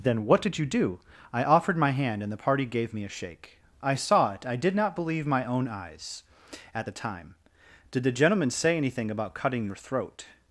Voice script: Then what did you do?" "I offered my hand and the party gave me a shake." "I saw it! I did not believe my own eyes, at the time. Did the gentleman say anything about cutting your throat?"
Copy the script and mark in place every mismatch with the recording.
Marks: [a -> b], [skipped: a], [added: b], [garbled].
Then what did you do?" "I offered my hand and the party gave me a shake." "I saw it! I did not believe my own eyes, at the time. Did the gentleman say anything about cutting your throat?"